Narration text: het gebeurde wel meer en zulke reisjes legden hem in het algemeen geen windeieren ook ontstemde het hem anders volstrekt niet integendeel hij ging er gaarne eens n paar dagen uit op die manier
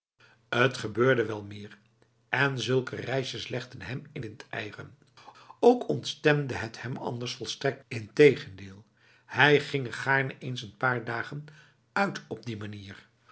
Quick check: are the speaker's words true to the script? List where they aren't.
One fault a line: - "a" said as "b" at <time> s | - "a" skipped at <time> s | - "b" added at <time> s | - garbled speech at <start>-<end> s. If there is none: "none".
- "het algemeen geen" skipped at 4.2 s
- "niet" skipped at 7.8 s